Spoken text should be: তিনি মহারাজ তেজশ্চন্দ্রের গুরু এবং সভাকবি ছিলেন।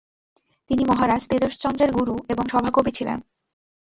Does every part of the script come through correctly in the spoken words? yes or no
yes